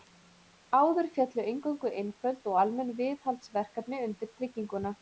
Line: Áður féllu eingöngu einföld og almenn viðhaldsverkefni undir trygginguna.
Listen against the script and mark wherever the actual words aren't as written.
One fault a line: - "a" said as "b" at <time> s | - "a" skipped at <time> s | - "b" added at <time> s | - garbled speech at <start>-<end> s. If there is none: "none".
none